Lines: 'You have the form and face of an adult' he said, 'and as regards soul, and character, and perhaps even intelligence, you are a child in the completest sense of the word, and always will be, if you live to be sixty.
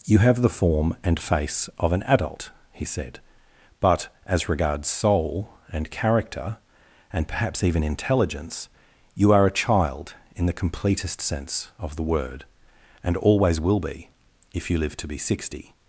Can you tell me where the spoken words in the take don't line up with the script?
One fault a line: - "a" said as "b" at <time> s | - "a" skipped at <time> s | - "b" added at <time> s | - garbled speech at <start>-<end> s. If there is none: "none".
- "and" said as "but" at 3.8 s